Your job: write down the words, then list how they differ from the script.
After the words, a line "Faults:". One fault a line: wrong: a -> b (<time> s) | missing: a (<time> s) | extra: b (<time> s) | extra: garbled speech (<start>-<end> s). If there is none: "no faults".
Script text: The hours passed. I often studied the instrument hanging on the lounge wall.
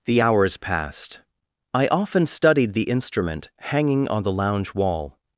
The hours passed. I often studied the instrument hanging on the lounge wall.
Faults:
no faults